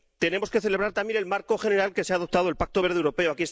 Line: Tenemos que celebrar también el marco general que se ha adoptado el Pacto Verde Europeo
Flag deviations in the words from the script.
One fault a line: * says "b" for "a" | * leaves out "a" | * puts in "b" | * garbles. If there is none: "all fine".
all fine